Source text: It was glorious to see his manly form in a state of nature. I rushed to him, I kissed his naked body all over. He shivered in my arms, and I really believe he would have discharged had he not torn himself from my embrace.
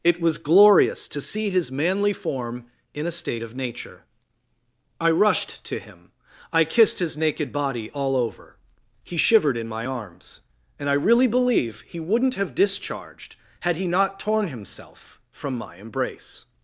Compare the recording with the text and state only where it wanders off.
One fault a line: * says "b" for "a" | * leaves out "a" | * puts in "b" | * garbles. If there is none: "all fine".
* says "wouldn't" for "would"